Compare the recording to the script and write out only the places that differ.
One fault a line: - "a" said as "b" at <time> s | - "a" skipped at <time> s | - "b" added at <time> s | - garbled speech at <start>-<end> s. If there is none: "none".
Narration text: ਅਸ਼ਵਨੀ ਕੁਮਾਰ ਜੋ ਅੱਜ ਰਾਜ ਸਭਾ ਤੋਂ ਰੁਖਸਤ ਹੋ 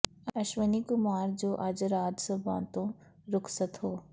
none